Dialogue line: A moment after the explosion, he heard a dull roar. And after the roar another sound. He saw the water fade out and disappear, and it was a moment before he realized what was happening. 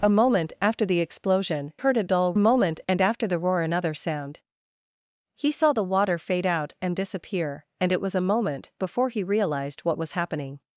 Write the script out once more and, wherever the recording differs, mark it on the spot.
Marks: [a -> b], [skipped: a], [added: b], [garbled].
A moment after the explosion, [skipped: he] heard a dull [roar. -> moment] And after the roar another sound. He saw the water fade out and disappear, and it was a moment before he realized what was happening.